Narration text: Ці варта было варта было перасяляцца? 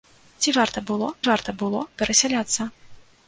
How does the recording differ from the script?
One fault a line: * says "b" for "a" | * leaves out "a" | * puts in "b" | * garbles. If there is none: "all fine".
all fine